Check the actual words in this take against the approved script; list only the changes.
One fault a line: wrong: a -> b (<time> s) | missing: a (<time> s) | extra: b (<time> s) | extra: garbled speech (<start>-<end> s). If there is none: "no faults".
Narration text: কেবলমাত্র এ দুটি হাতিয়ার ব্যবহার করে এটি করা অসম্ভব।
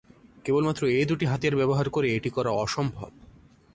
no faults